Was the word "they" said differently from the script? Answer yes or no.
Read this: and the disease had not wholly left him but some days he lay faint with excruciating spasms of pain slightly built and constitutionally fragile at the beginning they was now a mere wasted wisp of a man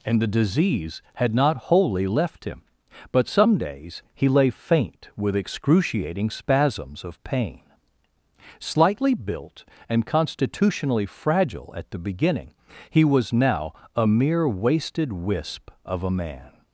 yes